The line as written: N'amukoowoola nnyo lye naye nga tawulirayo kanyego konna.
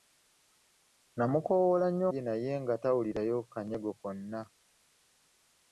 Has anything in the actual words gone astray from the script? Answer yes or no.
no